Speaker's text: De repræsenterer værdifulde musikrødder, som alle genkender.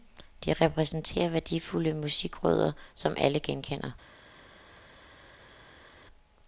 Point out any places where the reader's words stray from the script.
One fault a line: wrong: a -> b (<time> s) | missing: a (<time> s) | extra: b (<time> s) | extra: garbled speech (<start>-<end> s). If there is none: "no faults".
no faults